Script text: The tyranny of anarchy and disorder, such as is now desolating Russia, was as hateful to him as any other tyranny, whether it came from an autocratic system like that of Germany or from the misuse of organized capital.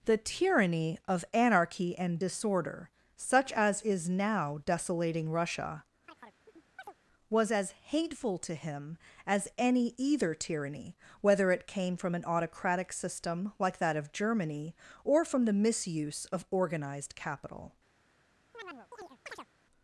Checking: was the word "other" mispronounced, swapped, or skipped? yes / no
yes